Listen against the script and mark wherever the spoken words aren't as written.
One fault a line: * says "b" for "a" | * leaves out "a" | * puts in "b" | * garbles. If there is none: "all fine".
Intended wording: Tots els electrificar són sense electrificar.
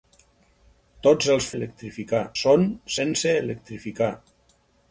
all fine